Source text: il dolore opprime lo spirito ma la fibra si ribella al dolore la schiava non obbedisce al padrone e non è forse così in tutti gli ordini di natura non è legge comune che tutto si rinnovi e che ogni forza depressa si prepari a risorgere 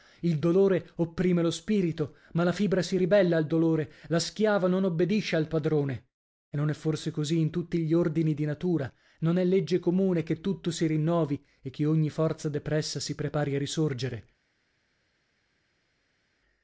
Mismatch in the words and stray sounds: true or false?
false